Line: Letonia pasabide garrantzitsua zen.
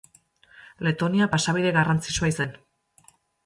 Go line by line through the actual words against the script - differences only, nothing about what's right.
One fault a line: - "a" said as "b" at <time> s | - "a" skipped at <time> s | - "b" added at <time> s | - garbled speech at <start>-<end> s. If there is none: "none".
none